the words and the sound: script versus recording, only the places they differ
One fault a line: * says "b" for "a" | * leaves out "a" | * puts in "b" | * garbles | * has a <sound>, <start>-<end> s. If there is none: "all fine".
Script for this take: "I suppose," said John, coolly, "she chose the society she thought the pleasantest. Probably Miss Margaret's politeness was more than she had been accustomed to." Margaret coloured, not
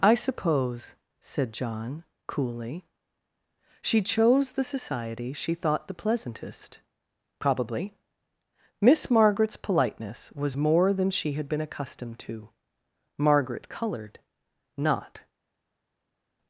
all fine